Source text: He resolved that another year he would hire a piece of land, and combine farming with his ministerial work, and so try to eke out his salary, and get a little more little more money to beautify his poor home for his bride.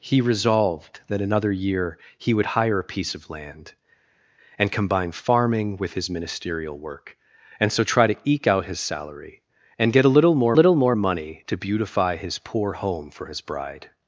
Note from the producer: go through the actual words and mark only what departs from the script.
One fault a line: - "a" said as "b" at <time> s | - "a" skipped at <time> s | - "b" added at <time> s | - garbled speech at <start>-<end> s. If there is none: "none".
none